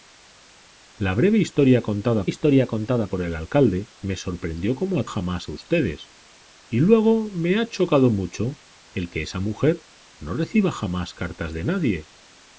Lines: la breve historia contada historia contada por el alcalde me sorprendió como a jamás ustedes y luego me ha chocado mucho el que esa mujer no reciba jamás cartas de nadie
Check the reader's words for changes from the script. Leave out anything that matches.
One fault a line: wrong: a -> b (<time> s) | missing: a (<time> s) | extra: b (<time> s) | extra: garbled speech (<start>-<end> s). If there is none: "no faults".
no faults